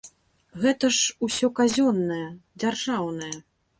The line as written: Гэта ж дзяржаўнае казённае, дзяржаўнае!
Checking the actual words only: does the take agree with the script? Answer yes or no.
no